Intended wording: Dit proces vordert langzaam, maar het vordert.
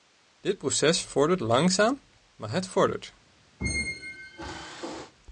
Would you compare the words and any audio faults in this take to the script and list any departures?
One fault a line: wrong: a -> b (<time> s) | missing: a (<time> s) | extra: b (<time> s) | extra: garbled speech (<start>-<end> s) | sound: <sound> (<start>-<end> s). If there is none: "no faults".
sound: squeak (3.6-5.1 s)